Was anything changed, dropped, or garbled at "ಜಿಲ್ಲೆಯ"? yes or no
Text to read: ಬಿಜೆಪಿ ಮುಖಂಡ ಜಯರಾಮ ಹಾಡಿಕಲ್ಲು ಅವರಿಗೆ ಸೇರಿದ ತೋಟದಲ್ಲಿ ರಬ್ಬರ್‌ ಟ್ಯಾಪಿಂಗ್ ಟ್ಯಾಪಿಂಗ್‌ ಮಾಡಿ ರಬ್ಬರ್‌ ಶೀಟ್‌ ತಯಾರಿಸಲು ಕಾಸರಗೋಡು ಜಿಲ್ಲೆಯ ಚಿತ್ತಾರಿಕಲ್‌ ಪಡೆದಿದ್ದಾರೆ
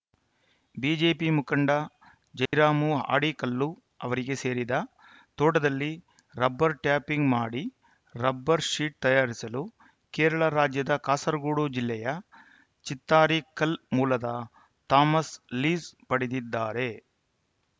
no